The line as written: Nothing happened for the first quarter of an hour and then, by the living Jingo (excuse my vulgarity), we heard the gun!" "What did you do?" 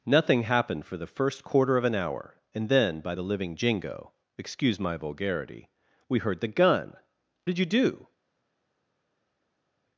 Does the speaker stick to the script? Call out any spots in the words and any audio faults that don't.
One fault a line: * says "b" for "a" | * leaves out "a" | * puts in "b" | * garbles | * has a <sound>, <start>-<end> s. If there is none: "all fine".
* leaves out "What"